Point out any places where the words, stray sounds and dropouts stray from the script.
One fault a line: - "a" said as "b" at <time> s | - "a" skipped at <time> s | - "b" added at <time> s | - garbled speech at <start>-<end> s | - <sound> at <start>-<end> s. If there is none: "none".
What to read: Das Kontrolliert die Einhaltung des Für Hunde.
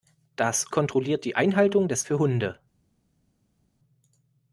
none